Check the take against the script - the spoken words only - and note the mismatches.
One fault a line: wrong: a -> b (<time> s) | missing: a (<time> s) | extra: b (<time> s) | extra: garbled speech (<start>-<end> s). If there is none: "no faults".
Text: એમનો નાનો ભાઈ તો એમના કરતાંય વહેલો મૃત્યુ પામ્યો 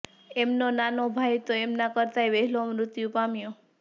no faults